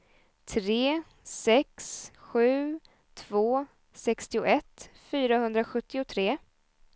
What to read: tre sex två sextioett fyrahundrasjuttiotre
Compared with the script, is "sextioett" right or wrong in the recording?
right